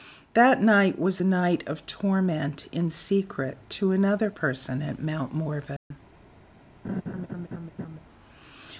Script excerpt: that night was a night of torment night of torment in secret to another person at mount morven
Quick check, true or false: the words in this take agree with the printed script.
false